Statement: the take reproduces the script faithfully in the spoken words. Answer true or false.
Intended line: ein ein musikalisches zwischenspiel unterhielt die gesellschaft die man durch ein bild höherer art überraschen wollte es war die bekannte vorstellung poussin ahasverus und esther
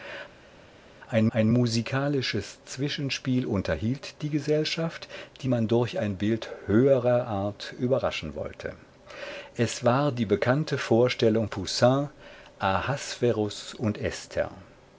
true